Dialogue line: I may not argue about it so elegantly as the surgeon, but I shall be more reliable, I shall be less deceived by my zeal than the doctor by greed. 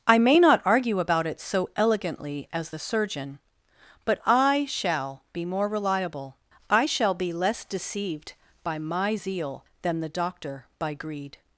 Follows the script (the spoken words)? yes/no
yes